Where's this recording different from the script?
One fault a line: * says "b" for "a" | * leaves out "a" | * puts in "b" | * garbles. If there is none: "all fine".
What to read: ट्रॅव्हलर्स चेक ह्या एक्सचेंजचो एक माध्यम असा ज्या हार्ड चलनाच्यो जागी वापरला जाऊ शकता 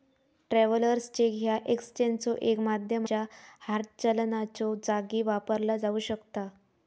* leaves out "असा"